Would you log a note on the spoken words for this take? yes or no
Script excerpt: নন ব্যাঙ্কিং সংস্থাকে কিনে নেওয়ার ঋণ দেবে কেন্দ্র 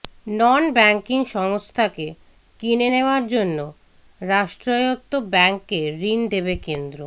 yes